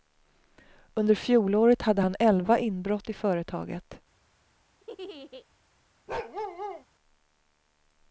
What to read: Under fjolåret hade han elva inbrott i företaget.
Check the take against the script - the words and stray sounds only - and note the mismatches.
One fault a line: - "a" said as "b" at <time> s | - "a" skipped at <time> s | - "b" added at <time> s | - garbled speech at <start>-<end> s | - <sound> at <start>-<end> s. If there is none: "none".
- laugh at 4.8-5.5 s
- bark at 6.1-6.8 s